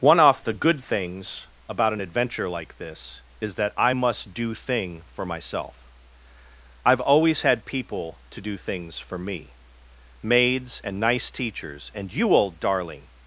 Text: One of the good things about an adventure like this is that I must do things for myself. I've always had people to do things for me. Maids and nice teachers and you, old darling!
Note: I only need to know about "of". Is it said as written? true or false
false